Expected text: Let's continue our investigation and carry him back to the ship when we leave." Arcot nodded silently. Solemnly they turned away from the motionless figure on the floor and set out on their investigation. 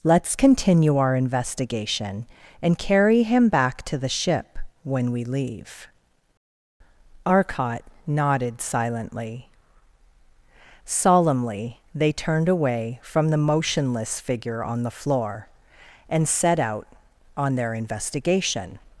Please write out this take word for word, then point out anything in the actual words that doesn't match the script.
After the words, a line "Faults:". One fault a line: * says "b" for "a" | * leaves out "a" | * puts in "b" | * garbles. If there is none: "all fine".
Let's continue our investigation and carry him back to the ship when we leave." Arcot nodded silently. Solemnly they turned away from the motionless figure on the floor and set out on their investigation.
Faults:
all fine